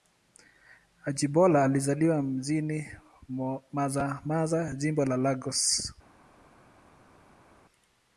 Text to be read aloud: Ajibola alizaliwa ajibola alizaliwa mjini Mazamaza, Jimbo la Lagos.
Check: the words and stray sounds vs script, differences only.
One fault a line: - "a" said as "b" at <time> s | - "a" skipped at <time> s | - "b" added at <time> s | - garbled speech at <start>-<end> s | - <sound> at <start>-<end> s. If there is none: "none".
- "ajibola alizaliwa" skipped at 2.2 s